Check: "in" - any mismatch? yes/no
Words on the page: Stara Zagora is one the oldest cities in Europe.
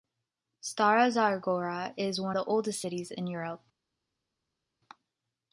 no